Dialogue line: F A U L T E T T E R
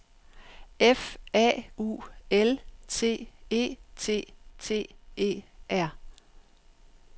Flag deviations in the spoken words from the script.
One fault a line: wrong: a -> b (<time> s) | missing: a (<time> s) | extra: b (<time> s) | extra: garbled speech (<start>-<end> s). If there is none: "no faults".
no faults